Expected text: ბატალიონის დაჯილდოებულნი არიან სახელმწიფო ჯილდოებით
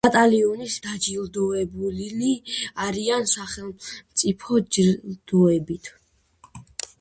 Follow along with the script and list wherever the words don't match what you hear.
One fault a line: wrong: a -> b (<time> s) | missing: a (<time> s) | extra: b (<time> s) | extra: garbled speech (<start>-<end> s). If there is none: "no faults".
no faults